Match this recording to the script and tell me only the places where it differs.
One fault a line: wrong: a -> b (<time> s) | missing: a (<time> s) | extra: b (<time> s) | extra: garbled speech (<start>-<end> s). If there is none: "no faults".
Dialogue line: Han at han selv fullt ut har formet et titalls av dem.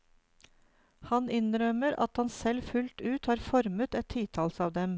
extra: innrømmer (1.4 s)